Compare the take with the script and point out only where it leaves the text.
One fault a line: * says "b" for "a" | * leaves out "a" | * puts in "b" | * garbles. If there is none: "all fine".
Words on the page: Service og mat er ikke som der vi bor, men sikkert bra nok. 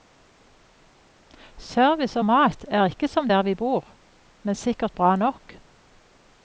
all fine